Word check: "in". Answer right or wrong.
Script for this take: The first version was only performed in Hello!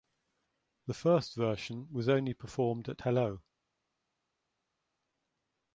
wrong